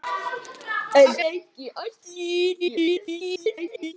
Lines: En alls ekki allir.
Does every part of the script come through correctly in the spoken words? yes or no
no